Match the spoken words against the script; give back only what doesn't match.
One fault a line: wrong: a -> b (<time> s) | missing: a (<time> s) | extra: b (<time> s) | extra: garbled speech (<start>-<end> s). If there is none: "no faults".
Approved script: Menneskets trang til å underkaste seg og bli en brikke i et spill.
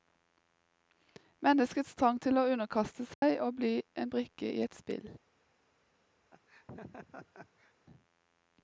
no faults